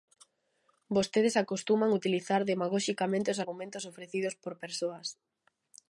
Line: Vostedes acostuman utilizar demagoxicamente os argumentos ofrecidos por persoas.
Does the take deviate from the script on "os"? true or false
false